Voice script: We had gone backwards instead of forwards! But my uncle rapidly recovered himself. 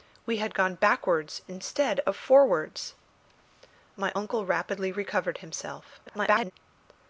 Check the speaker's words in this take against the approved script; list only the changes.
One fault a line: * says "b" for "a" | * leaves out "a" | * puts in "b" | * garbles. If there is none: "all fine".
* leaves out "But"
* garbles